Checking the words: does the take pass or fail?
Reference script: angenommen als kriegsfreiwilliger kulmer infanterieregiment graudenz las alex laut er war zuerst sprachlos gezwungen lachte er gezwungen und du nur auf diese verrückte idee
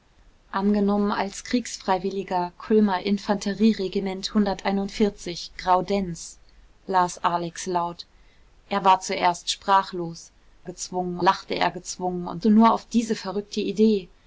pass